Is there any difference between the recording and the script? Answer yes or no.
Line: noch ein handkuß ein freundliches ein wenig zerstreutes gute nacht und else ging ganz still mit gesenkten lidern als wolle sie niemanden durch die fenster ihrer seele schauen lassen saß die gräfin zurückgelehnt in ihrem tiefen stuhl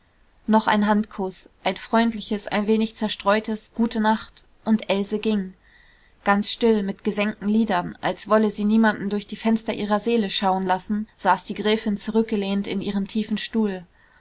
no